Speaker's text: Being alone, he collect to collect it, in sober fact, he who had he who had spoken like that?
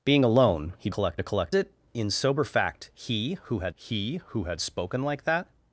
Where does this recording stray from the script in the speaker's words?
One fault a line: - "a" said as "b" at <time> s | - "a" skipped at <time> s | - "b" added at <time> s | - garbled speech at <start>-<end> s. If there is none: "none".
none